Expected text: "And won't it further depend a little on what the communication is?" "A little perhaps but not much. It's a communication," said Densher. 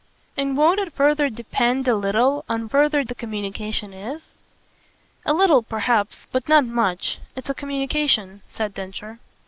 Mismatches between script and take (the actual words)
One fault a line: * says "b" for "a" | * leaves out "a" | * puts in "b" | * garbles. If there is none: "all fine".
* says "further" for "what"